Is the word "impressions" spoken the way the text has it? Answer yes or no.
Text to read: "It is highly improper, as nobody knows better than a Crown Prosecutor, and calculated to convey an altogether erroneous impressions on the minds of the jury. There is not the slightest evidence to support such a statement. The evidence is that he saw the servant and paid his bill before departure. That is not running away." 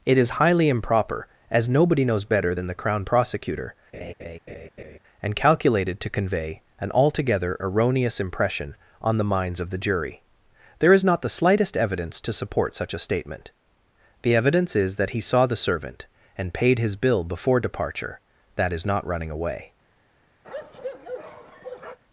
no